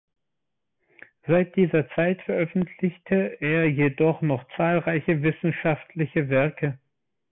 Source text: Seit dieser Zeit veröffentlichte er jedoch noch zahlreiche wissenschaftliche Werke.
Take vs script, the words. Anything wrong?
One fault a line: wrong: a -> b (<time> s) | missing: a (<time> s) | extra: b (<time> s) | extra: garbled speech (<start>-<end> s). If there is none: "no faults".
no faults